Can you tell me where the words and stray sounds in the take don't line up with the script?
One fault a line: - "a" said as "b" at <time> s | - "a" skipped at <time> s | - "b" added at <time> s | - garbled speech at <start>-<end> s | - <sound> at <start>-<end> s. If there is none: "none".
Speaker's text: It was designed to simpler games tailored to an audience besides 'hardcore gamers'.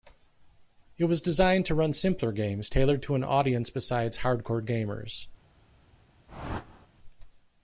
- "run" added at 1.8 s
- whoosh at 6.3-6.9 s